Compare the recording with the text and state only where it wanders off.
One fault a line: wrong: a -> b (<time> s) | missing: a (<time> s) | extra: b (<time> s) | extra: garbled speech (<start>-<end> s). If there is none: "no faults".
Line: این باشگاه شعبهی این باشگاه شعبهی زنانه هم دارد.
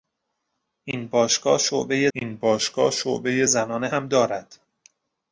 no faults